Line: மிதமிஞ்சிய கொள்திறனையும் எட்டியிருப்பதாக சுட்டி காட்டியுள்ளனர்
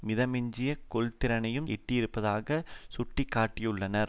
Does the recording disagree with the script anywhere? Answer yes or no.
no